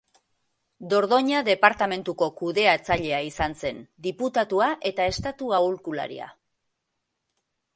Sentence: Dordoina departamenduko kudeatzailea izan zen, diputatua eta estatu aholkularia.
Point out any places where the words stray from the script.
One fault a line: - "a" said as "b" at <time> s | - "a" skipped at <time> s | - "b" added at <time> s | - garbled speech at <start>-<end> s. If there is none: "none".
none